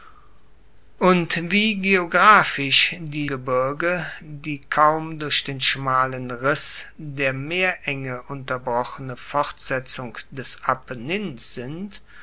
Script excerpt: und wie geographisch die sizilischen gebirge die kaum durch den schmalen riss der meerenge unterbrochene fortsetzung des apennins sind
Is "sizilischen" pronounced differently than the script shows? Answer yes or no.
yes